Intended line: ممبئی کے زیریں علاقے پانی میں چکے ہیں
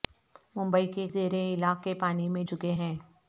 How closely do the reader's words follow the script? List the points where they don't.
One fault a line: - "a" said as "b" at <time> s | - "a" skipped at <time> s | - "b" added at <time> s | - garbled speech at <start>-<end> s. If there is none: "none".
none